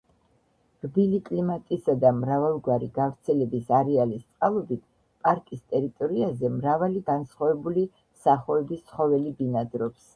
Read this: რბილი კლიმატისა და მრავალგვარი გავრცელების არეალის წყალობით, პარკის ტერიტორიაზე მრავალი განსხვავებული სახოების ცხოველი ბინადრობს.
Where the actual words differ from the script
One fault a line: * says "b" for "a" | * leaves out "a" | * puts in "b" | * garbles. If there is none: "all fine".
all fine